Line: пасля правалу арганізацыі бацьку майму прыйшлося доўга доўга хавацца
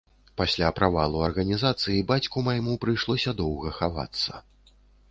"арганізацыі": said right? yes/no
yes